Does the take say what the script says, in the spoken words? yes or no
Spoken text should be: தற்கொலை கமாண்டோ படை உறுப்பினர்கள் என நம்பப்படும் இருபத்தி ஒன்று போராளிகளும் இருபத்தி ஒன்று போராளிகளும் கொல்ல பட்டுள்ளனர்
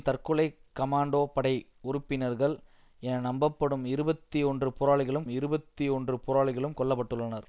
yes